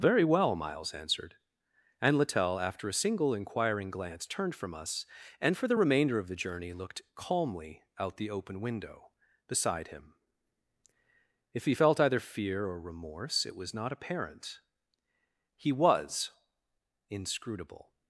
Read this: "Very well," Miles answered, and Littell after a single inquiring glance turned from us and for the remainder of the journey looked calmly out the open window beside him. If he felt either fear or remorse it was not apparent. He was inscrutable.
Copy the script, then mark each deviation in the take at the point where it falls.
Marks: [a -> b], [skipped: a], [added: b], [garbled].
"Very well," Miles answered, and Littell after a single inquiring glance turned from us and for the remainder of the journey looked calmly out the open window beside him. If he felt either fear or remorse it was not apparent. He was inscrutable.